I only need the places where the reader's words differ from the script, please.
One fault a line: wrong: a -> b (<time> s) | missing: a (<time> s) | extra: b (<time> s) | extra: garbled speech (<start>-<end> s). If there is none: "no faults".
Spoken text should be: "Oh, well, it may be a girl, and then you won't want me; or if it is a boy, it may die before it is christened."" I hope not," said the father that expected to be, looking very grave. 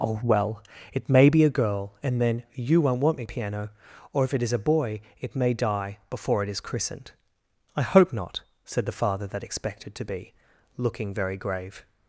extra: piano (3.2 s)